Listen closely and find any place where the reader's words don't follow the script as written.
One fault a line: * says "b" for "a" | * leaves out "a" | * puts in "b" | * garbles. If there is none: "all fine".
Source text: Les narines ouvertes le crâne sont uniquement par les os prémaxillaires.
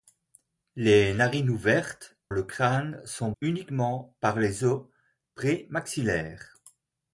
all fine